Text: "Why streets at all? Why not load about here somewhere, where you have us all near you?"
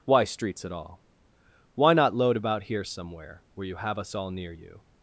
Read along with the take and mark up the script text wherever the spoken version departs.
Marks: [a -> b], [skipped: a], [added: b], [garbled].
"Why streets at all? Why not load about here somewhere, where you have us all near you?"